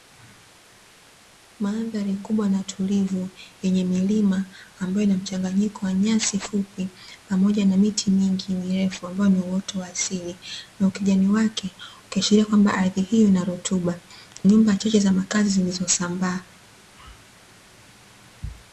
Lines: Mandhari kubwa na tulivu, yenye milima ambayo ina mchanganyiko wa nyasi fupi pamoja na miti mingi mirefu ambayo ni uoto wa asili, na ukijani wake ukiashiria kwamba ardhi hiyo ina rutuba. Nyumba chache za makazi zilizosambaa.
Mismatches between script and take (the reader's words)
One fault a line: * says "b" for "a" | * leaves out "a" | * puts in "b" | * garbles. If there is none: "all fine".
all fine